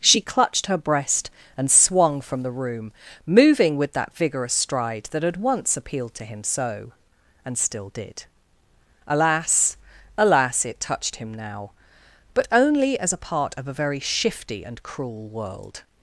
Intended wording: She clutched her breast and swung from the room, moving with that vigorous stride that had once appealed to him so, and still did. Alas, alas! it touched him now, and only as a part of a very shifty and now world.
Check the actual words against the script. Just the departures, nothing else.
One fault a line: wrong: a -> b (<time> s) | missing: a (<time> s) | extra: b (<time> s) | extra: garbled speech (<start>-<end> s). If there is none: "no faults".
wrong: and -> but (12.3 s)
wrong: now -> cruel (14.8 s)